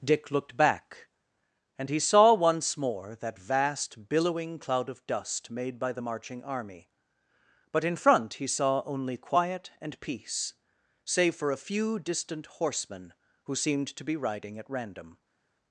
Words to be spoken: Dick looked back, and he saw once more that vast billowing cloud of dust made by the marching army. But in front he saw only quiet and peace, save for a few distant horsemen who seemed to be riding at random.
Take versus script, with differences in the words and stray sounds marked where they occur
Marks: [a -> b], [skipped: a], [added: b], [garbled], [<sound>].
Dick looked back, and he saw once more that vast billowing cloud of dust made by the marching army. But in front he saw only quiet and peace, save for a few distant horsemen who seemed to be riding at random.